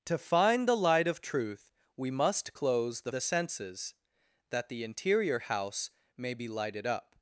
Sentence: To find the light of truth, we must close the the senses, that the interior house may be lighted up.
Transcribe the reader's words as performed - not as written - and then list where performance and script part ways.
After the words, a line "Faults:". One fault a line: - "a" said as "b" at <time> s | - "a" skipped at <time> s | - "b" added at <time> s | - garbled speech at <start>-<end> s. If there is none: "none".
To find the light of truth, we must close the the senses, that the interior house may be lighted up.
Faults:
none